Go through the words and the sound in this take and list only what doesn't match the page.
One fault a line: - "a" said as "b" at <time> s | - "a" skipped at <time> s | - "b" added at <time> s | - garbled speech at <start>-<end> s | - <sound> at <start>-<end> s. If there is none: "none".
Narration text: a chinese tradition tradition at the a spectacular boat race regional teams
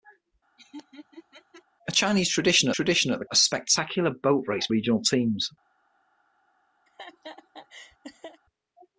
- laugh at 0.6-1.6 s
- laugh at 6.9-8.4 s